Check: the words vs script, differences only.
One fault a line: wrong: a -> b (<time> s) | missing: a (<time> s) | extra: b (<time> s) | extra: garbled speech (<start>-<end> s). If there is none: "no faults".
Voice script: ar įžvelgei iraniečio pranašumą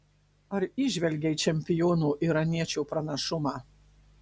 extra: čempiono (1.4 s)